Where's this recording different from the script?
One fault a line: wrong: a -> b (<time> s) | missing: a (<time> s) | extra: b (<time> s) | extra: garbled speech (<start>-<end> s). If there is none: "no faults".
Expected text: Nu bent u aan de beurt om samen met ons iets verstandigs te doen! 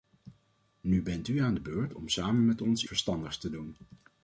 missing: iets (2.8 s)